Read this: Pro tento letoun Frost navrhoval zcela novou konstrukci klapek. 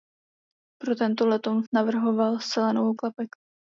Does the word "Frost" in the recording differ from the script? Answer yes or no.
yes